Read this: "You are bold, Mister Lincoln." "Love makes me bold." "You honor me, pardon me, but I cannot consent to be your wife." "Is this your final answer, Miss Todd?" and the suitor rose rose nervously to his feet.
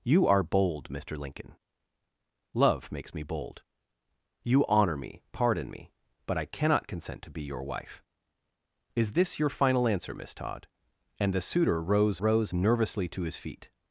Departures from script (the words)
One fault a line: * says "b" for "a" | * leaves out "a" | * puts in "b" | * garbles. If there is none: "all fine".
all fine